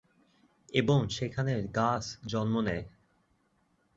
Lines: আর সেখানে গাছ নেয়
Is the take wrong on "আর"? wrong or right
wrong